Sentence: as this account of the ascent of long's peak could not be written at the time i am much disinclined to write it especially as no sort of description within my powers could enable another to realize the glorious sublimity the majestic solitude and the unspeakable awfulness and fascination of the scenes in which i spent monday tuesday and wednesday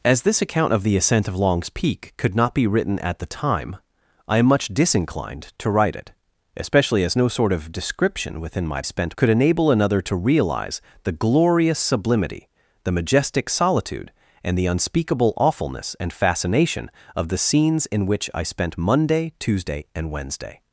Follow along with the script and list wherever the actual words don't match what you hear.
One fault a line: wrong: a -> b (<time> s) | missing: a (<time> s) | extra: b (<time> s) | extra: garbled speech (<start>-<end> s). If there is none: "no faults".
wrong: powers -> spent (8.8 s)